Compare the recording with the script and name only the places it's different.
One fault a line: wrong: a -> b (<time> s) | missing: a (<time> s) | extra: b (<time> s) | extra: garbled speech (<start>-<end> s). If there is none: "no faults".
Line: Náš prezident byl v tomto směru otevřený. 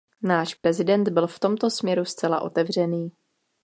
extra: zcela (2.0 s)